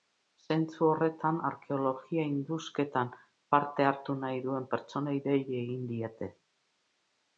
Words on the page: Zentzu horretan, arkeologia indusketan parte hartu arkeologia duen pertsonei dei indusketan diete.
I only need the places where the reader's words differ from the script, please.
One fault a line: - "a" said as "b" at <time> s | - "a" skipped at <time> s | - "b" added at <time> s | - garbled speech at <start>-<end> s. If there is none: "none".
- "arkeologia" said as "nahi" at 4.2 s
- "indusketan" said as "egin" at 5.6 s